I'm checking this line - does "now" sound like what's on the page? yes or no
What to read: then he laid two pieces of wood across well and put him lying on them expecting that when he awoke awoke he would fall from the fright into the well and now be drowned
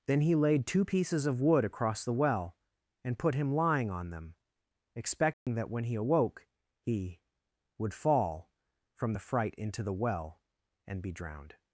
no